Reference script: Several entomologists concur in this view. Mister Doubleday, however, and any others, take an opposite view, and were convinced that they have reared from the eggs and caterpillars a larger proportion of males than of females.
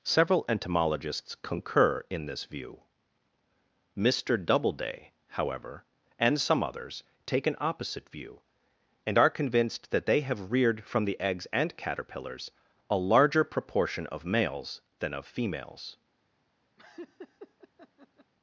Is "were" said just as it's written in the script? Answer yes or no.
no